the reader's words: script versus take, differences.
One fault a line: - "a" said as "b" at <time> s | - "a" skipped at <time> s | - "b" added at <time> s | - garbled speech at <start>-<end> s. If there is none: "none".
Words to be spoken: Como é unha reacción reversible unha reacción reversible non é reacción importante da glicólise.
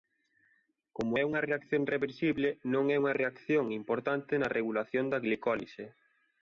- "unha reacción reversible" skipped at 2.5 s
- "unha" added at 3.0 s
- "na regulación" added at 4.4 s